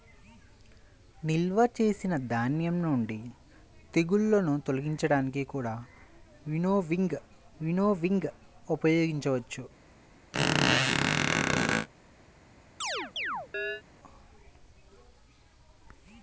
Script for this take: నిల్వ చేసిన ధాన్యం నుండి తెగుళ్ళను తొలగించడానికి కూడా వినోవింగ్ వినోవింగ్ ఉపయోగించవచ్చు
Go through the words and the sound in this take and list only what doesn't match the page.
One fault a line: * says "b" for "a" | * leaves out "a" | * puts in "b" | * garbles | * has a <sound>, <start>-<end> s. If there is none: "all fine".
* has a squeak, 10.3-11.9 s
* has a chirp, 12.8-13.8 s